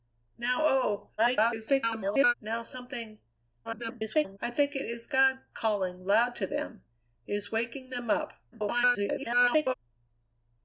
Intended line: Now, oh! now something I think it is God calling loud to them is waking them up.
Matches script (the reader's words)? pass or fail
fail